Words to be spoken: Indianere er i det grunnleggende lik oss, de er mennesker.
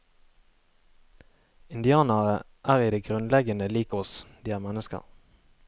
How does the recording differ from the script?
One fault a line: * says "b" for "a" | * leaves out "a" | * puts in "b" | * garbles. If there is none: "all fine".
all fine